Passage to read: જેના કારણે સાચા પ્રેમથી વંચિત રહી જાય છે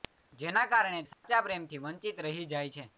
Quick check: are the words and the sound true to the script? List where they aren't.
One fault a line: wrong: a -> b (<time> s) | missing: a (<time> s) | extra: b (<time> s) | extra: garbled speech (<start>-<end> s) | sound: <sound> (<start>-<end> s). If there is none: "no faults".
sound: dropout (1.1-1.2 s)